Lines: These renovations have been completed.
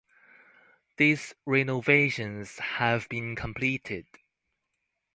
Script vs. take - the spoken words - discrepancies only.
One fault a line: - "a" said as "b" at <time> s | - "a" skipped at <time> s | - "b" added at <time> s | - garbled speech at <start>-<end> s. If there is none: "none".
none